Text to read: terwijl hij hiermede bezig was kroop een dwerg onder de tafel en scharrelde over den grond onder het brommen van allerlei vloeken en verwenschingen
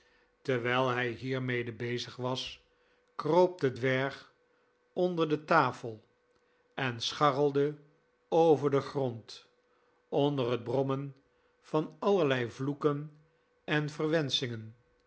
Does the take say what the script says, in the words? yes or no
no